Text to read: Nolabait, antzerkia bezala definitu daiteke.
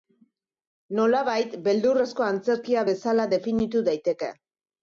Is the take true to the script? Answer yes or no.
no